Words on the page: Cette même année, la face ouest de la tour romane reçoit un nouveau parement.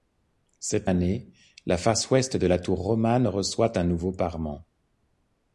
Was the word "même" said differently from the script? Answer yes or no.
yes